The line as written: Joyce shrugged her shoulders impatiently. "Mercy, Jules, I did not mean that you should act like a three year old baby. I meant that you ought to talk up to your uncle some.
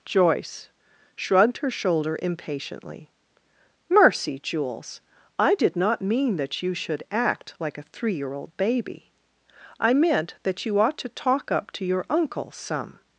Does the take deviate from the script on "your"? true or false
false